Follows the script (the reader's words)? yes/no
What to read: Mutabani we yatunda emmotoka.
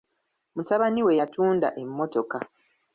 yes